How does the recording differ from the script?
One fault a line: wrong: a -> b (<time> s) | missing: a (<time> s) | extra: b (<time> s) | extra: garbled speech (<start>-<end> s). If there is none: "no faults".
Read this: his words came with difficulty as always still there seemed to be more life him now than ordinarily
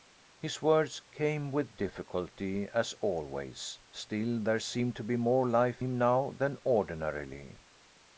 no faults